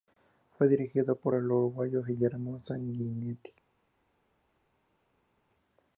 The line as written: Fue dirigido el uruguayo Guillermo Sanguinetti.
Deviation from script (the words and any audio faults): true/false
true